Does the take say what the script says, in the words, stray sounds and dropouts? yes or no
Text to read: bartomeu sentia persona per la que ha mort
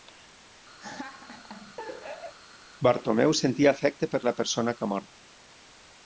no